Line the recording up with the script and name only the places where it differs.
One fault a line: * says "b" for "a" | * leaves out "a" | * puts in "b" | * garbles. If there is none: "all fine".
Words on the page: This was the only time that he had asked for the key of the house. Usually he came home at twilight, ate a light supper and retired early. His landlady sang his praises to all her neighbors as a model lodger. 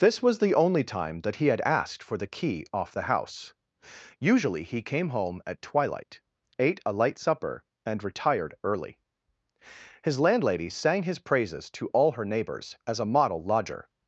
* says "off" for "of"